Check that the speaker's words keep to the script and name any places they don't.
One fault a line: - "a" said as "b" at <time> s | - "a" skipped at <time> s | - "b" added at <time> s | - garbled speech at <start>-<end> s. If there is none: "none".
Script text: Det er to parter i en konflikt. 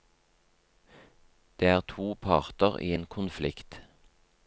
none